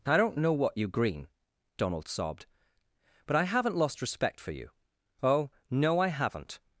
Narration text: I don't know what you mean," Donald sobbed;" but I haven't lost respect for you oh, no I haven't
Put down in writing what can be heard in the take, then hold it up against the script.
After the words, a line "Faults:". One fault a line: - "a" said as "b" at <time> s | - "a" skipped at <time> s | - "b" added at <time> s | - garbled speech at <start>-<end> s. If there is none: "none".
I don't know what you green," Donald sobbed;" but I haven't lost respect for you oh, no I haven't
Faults:
- "mean" said as "green" at 0.9 s